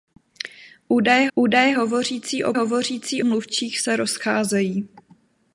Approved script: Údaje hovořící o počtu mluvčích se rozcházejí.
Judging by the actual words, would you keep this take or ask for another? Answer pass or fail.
fail